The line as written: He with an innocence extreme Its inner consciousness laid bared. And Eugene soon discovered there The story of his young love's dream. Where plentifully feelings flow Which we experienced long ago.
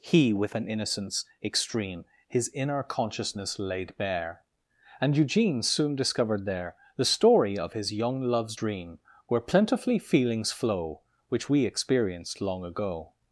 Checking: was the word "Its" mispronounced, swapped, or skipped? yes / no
yes